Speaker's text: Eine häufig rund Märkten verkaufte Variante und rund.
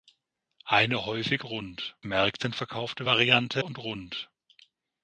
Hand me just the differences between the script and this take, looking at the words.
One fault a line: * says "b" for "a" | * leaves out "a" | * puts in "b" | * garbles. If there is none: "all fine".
all fine